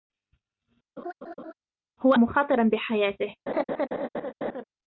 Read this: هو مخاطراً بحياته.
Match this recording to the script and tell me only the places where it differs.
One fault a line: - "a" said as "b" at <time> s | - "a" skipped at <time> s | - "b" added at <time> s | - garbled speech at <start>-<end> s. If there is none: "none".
none